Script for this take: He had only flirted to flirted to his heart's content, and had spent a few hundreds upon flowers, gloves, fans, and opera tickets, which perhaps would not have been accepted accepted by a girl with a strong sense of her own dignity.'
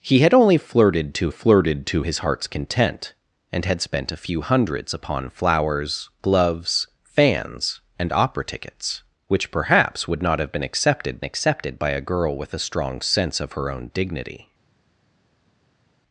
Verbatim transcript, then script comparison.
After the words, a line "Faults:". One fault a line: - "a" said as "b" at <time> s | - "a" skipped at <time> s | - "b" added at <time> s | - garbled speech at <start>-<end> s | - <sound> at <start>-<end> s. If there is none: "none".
He had only flirted to flirted to his heart's content, and had spent a few hundreds upon flowers, gloves, fans, and opera tickets, which perhaps would not have been accepted accepted by a girl with a strong sense of her own dignity.'
Faults:
none